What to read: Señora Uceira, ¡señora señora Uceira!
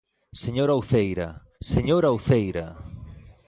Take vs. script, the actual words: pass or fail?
fail